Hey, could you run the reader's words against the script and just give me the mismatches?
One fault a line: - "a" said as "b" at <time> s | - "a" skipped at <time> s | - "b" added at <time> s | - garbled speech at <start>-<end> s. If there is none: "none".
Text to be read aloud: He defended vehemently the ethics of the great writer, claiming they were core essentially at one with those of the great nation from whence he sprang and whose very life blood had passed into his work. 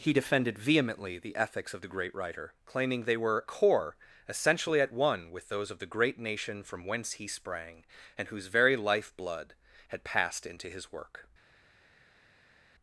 none